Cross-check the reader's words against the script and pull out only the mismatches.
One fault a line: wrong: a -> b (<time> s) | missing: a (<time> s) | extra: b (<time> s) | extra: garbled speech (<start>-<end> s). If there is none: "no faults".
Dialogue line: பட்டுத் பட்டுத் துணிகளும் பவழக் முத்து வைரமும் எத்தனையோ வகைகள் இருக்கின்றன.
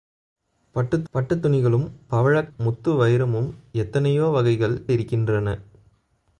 no faults